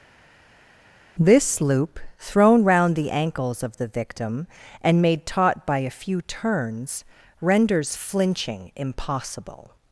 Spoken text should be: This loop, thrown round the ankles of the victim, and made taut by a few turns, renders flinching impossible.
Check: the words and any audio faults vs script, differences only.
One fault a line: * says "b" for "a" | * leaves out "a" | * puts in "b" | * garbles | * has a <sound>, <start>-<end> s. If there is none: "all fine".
all fine